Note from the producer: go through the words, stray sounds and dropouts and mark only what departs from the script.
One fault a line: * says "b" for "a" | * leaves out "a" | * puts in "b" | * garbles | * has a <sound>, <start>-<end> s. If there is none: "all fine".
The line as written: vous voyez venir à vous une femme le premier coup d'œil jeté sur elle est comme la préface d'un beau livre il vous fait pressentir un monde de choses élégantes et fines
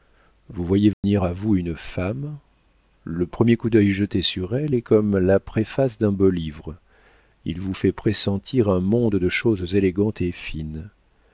* has a dropout, 0.9-1.0 s